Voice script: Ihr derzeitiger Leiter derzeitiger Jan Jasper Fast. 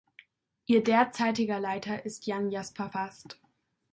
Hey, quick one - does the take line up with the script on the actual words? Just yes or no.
no